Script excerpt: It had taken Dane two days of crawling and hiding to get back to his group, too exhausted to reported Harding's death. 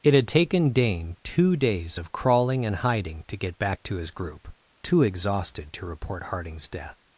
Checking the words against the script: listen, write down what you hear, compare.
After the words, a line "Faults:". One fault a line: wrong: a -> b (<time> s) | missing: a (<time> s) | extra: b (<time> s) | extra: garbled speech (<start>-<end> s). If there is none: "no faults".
It had taken Dane two days of crawling and hiding to get back to his group, too exhausted to report Harding's death.
Faults:
wrong: reported -> report (5.8 s)